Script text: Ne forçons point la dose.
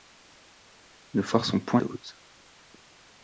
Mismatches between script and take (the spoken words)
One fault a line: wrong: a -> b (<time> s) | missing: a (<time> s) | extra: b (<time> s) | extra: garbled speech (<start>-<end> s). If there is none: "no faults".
missing: la (1.8 s)